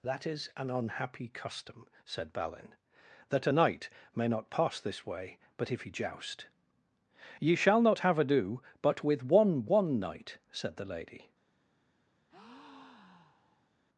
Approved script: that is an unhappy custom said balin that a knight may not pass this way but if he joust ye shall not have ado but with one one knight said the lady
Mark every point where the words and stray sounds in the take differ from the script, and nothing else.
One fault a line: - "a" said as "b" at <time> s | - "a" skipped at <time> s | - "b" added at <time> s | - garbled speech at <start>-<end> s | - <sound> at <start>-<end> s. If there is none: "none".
- breath at 12.3-13.7 s